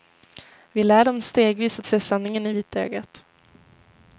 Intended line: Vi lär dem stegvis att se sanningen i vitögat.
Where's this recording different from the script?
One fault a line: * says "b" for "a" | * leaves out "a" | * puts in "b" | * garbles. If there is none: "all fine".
all fine